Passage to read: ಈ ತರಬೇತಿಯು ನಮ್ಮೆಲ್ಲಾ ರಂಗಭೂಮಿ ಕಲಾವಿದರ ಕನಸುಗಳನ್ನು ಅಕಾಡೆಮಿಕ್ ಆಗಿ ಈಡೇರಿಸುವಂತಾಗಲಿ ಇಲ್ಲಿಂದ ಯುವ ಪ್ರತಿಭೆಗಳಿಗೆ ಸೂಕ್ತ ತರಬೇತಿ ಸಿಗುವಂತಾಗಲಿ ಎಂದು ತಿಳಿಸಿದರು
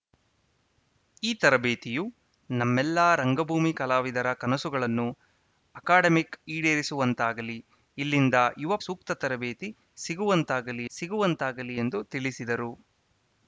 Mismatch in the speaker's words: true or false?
true